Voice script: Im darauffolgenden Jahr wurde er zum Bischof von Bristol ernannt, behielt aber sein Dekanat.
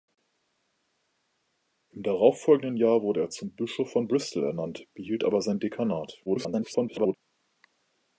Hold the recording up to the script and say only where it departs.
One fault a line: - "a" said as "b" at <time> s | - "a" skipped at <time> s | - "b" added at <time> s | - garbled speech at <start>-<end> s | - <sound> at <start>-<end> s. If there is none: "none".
- garbled speech at 6.3-7.2 s